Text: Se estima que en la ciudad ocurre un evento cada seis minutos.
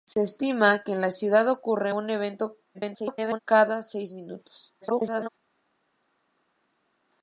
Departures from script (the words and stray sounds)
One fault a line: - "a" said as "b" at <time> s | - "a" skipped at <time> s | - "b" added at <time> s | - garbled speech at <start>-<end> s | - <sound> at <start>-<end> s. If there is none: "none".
- garbled speech at 2.7-3.4 s
- garbled speech at 4.8-5.3 s